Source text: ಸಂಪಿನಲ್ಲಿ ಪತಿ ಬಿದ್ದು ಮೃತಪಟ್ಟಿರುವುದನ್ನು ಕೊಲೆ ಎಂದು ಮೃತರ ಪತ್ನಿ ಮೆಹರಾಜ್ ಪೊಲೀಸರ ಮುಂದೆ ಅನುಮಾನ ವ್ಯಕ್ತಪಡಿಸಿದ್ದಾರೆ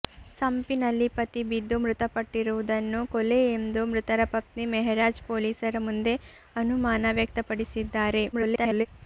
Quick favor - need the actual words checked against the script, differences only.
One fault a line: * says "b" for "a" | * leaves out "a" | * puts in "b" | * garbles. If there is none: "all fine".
* garbles